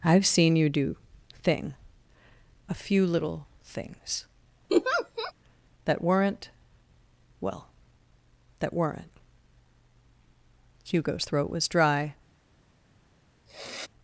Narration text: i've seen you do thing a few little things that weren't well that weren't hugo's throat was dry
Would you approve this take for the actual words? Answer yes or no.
yes